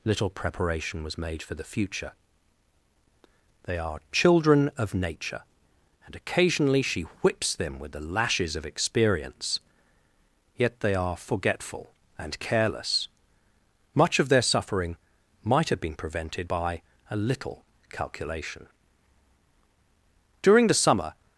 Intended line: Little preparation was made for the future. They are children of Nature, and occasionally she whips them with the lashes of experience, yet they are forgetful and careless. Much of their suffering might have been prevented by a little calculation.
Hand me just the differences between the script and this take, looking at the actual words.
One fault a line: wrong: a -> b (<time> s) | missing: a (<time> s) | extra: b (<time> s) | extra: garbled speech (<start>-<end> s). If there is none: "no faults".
extra: During the summer (20.4 s)